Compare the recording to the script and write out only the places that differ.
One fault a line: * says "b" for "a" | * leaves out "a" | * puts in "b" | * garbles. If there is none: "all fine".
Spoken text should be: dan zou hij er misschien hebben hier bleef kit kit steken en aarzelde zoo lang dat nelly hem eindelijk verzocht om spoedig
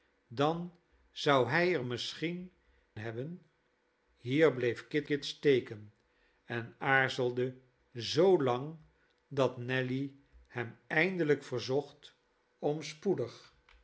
all fine